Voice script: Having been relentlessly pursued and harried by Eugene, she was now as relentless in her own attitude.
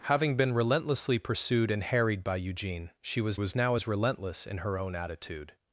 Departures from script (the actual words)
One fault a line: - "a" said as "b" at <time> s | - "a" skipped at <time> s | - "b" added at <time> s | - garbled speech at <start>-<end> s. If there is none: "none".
- "was" added at 3.4 s